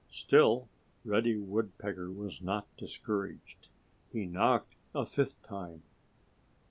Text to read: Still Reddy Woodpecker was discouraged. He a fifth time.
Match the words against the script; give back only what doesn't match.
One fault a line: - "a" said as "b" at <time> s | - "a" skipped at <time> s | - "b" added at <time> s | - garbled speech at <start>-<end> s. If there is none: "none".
- "not" added at 2.4 s
- "knocked" added at 4.3 s